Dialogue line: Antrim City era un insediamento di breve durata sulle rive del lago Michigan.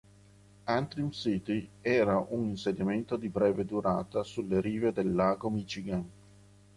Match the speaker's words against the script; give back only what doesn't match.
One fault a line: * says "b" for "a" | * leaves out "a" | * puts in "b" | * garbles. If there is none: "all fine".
all fine